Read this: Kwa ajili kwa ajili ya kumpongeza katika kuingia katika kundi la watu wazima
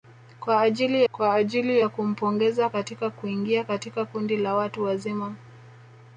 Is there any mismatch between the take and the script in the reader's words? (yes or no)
no